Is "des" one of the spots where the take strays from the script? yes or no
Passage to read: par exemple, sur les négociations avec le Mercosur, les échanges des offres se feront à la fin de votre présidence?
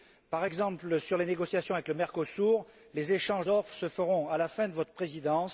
yes